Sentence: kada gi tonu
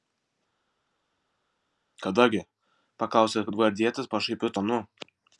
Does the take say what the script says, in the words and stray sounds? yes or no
no